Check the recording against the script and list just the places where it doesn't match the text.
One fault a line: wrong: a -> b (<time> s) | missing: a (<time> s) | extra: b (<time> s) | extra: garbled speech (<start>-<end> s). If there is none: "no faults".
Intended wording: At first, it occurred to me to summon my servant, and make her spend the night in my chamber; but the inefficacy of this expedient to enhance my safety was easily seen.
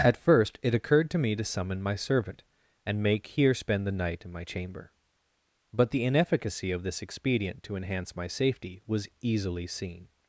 wrong: her -> here (3.3 s)